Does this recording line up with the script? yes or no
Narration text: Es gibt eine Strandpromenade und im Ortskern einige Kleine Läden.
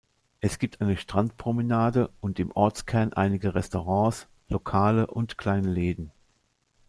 no